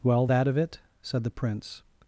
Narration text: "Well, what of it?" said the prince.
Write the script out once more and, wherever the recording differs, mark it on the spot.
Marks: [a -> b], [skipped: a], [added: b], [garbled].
"Well, [what -> that] of it?" said the prince.